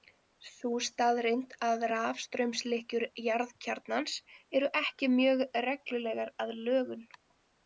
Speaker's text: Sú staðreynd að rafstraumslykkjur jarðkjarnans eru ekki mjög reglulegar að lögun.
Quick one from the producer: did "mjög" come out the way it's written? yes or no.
yes